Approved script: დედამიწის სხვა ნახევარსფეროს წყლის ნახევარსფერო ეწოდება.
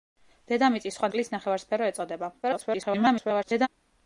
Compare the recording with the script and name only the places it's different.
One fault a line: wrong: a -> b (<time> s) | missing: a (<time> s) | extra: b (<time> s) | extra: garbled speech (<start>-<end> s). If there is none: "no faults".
missing: ნახევარსფეროს (1.1 s)
extra: garbled speech (2.4-3.7 s)